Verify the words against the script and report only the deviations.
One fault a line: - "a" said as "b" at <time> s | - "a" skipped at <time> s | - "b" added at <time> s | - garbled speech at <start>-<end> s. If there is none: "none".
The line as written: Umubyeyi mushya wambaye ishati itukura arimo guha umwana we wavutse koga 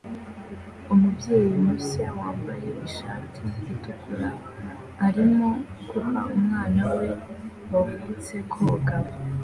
none